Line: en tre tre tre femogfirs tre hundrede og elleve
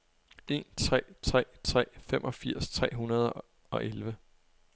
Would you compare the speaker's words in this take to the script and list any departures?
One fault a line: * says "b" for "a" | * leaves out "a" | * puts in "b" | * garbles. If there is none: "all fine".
all fine